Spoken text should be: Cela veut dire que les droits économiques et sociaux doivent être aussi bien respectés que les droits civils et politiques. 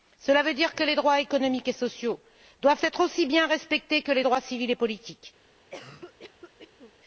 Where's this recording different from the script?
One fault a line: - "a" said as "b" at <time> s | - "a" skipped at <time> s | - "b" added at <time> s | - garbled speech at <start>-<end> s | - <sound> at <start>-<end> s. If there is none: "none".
- cough at 5.7-6.9 s